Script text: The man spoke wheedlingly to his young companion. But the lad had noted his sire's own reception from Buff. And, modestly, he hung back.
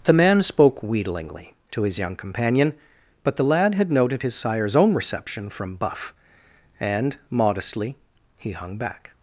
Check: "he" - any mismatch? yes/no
no